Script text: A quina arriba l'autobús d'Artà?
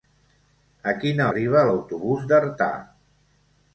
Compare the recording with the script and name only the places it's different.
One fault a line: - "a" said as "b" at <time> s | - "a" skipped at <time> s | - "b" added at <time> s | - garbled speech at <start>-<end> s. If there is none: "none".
none